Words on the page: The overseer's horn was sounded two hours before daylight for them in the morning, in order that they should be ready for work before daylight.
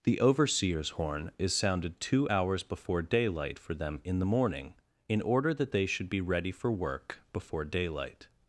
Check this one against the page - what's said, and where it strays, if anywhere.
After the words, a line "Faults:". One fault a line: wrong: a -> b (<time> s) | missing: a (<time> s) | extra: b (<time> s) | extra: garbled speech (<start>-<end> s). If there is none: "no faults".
The overseer's horn is sounded two hours before daylight for them in the morning, in order that they should be ready for work before daylight.
Faults:
wrong: was -> is (1.4 s)